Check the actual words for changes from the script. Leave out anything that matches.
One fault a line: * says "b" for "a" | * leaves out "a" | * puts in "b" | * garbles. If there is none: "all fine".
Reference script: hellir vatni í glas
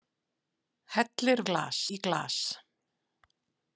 * says "glas" for "vatni"